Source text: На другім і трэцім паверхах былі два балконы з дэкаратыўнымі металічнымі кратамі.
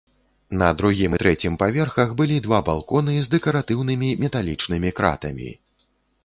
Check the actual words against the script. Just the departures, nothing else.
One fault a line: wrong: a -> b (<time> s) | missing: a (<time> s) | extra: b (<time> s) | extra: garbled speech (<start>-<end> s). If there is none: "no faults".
no faults